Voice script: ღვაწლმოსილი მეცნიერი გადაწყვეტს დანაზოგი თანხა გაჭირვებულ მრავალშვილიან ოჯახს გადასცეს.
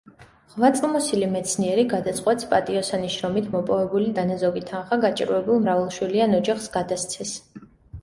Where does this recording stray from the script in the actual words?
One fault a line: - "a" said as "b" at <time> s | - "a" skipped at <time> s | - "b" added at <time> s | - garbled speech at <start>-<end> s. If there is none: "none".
- "პატიოსანი შრომით მოპოვებული" added at 2.5 s